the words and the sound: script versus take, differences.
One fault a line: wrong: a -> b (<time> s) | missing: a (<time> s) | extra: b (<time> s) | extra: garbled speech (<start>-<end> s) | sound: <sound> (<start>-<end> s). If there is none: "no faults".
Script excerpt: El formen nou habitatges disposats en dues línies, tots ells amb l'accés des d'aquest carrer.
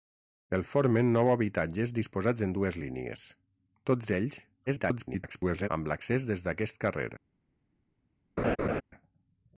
extra: garbled speech (4.7-5.7 s)
sound: laugh (8.4-8.8 s)